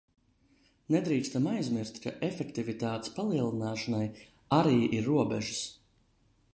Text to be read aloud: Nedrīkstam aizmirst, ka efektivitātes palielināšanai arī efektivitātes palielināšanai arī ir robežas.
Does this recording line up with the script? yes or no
no